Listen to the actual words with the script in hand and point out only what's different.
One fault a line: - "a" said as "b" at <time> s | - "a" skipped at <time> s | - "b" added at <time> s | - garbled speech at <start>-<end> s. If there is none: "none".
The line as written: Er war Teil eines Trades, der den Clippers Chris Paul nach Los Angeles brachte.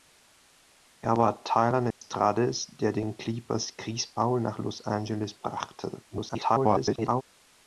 - garbled speech at 6.1-7.2 s